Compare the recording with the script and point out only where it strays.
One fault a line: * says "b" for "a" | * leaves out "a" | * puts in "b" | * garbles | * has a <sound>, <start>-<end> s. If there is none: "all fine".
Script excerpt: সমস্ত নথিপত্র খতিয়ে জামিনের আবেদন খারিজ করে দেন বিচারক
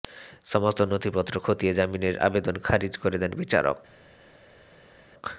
all fine